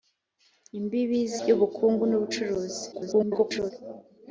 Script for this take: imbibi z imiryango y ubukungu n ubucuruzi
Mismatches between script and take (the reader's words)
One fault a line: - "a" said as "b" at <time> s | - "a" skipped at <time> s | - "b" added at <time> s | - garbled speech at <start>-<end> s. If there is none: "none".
- "imiryango" skipped at 1.4 s
- garbled speech at 2.9-3.7 s